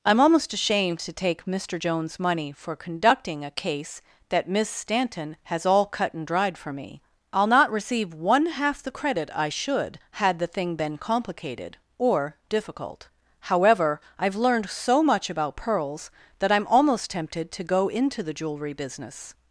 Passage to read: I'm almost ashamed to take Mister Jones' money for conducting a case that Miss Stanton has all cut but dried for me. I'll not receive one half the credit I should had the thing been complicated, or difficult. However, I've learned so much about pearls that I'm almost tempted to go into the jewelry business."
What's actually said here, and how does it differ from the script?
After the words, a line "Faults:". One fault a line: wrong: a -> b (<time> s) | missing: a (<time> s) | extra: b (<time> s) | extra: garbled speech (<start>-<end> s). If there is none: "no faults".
I'm almost ashamed to take Mister Jones' money for conducting a case that Miss Stanton has all cut and dried for me. I'll not receive one half the credit I should had the thing been complicated, or difficult. However, I've learned so much about pearls that I'm almost tempted to go into the jewelry business."
Faults:
wrong: but -> and (6.1 s)